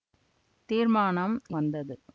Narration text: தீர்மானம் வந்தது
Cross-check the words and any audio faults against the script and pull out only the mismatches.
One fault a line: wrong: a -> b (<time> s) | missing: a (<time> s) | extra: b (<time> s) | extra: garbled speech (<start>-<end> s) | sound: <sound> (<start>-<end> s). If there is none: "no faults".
no faults